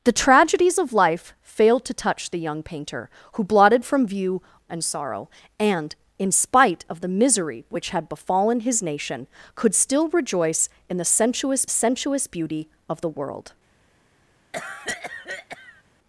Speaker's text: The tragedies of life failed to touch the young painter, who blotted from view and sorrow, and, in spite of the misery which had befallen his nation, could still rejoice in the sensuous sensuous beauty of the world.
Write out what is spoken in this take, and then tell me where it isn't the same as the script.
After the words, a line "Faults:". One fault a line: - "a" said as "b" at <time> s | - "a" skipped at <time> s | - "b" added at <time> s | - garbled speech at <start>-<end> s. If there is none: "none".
The tragedies of life failed to touch the young painter, who blotted from view and sorrow, and, in spite of the misery which had befallen his nation, could still rejoice in the sensuous sensuous beauty of the world.
Faults:
none